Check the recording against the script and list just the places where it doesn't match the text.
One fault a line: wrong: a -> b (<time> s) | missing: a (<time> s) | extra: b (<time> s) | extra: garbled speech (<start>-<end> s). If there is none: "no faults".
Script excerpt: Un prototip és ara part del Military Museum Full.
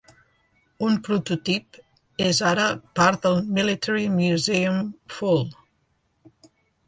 no faults